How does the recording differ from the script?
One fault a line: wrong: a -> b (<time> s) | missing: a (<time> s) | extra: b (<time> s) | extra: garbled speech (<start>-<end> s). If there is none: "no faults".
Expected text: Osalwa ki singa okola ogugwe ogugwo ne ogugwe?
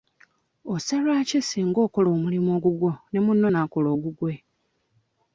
wrong: ogugwe -> omulimu (2.1 s)
extra: munno n'akola (3.2 s)